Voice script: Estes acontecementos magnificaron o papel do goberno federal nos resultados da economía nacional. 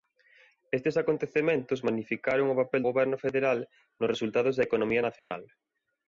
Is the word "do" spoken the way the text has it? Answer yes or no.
no